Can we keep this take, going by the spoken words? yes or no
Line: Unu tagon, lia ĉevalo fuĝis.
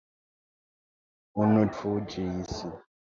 no